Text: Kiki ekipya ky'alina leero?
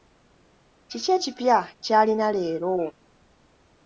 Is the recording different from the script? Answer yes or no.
no